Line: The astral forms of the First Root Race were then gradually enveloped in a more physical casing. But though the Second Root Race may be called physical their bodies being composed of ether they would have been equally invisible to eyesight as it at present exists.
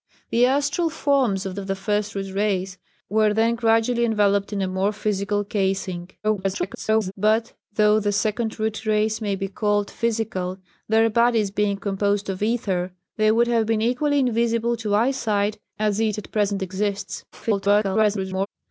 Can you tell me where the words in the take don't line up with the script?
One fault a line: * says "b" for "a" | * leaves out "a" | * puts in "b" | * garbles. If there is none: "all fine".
* puts in "of"
* garbles
* garbles